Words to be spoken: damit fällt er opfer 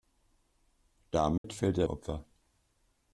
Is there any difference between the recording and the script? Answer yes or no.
no